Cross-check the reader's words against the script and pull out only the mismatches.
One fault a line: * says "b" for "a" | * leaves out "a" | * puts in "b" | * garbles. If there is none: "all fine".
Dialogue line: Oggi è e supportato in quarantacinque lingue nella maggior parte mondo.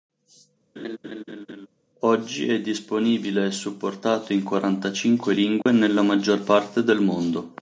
* puts in "disponibile"
* puts in "del"